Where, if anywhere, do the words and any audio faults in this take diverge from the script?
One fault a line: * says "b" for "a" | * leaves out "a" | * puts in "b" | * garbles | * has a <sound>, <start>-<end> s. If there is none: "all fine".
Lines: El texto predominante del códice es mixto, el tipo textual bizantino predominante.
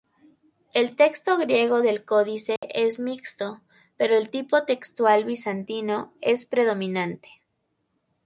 * says "griego" for "predominante"
* has a dropout, 2.6-2.6 s
* puts in "pero"
* puts in "es"